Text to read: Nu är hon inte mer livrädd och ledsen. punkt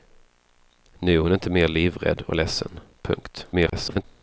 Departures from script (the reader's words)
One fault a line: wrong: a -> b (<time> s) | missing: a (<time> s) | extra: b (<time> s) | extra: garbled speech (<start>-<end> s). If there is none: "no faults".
extra: garbled speech (3.5-4.0 s)